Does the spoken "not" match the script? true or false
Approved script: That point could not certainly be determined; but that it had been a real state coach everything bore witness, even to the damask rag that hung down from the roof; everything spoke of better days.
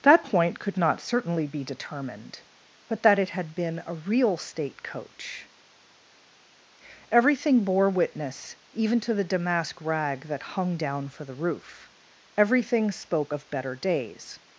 true